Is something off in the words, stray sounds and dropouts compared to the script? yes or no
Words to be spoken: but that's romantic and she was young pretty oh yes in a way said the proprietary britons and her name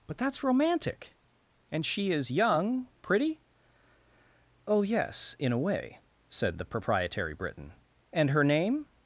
yes